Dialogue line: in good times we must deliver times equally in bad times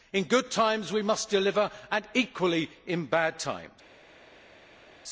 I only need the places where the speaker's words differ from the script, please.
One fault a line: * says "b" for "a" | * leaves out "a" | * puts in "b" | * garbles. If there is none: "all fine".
* says "and" for "times"